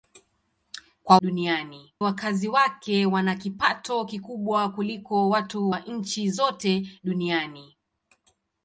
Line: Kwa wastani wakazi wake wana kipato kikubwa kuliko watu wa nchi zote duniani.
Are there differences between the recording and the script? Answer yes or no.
yes